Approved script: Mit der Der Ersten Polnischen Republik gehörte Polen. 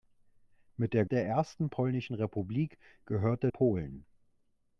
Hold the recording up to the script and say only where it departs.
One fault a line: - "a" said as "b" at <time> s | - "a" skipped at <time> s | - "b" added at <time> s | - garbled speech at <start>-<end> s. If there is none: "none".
none